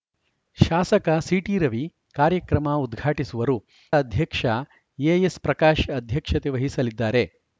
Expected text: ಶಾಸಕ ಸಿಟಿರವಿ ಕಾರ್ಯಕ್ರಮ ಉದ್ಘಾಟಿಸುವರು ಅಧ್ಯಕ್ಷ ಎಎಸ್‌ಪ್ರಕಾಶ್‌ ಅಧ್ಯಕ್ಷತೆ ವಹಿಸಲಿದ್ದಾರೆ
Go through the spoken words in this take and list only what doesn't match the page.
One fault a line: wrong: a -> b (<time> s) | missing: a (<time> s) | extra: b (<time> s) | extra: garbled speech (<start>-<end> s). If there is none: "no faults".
no faults